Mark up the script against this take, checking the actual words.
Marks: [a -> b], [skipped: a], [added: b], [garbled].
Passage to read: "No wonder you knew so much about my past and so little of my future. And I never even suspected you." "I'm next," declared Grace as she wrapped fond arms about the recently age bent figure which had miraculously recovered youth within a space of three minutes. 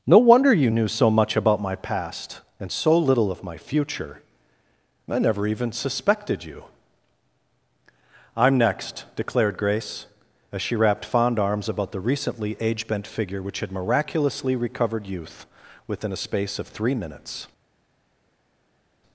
"No wonder you knew so much about my past and so little of my future. [skipped: And] I never even suspected you." "I'm next," declared Grace as she wrapped fond arms about the recently age bent figure which had miraculously recovered youth within a space of three minutes.